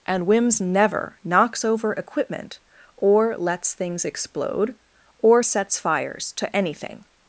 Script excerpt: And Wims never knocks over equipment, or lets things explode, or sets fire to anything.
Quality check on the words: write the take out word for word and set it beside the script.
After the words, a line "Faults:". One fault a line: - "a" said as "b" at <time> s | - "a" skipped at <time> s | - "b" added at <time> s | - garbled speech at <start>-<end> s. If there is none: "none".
And Wims never knocks over equipment, or lets things explode, or sets fires to anything.
Faults:
- "fire" said as "fires" at 5.8 s